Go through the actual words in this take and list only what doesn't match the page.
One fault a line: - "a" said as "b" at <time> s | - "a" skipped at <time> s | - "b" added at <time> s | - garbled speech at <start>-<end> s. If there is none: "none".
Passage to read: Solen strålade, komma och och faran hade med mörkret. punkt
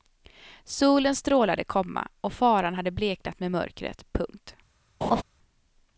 - "och" skipped at 2.3 s
- "bleknat" added at 2.9 s